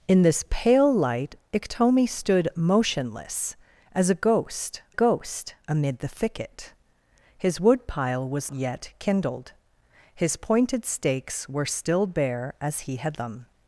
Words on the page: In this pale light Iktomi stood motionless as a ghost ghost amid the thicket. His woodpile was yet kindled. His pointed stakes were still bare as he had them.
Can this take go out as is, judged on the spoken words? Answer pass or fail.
pass